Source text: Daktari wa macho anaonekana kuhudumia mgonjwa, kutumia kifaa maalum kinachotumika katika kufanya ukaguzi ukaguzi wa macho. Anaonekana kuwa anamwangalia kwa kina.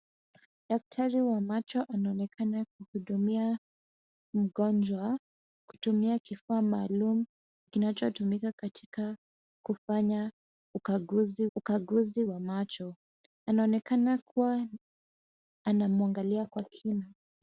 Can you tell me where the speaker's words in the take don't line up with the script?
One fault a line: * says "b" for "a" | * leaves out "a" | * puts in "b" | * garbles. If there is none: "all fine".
all fine